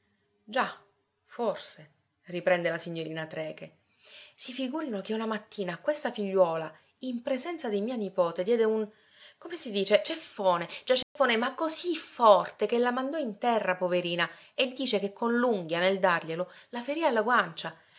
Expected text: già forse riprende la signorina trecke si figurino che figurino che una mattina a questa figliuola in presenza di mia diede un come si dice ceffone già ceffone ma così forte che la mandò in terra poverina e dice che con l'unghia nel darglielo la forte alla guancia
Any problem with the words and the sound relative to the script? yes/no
yes